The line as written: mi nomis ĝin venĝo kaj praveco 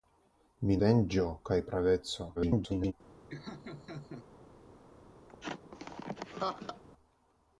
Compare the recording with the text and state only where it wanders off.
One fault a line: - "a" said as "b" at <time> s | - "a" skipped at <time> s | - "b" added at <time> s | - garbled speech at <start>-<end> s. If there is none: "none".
- "nomis ĝin" skipped at 0.8 s
- garbled speech at 2.4-2.9 s